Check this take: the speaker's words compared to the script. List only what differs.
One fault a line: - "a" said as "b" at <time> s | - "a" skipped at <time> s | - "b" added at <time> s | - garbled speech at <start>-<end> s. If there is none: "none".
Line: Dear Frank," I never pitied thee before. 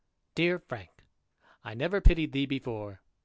none